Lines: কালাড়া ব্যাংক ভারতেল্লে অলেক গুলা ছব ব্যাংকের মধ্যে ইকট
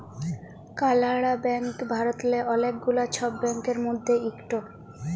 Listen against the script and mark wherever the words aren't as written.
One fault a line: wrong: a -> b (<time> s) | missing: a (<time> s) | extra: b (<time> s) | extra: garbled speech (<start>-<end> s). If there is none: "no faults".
no faults